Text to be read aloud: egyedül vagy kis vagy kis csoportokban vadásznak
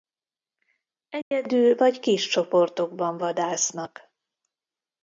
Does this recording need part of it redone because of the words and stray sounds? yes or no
yes